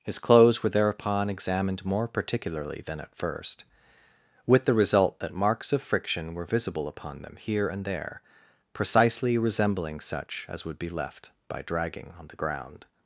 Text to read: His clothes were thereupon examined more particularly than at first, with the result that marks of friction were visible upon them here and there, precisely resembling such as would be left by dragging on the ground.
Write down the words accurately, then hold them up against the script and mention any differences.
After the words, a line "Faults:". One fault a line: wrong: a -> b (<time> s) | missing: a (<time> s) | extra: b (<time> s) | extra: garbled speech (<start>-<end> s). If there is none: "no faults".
His clothes were thereupon examined more particularly than at first, with the result that marks of friction were visible upon them here and there, precisely resembling such as would be left by dragging on the ground.
Faults:
no faults